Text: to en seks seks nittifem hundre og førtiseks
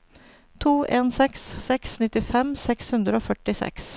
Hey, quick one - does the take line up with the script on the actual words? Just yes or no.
no